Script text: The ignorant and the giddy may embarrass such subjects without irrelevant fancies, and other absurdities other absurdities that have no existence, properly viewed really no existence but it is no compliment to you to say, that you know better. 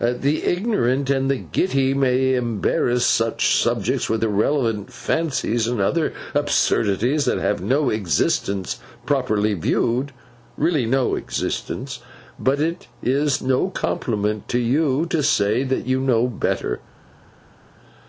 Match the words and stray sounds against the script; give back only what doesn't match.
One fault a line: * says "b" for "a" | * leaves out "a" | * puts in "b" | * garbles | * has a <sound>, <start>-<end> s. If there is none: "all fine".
* says "with" for "without"
* leaves out "other absurdities"